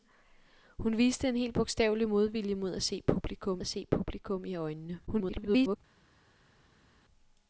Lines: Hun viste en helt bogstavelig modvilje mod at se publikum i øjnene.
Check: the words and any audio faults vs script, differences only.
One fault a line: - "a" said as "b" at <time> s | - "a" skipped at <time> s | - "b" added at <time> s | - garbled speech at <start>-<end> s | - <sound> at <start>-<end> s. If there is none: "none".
- "at se publikum" added at 3.6 s
- garbled speech at 5.1-5.8 s